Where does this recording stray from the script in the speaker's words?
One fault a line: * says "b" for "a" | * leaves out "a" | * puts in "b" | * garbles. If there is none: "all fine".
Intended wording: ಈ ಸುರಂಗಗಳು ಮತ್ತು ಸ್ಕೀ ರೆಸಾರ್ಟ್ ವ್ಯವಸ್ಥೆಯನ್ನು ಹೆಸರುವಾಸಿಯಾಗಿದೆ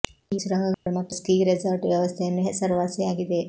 all fine